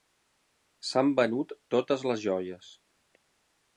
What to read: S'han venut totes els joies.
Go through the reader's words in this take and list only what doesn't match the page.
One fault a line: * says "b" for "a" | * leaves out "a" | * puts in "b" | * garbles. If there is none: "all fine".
* says "les" for "els"